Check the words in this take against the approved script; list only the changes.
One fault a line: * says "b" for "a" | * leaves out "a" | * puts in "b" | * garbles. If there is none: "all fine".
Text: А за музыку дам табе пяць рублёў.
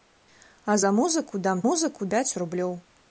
* says "музыку" for "табе"